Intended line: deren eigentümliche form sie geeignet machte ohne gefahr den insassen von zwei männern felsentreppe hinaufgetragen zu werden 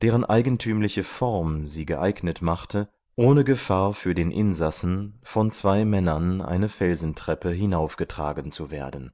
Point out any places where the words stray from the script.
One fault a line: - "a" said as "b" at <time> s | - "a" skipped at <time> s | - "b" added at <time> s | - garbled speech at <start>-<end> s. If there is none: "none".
- "für" added at 3.9 s
- "eine" added at 6.4 s